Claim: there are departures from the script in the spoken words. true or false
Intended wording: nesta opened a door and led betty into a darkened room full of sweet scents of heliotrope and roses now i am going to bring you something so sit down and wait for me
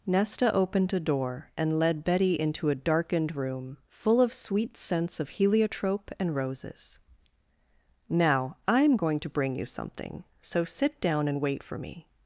false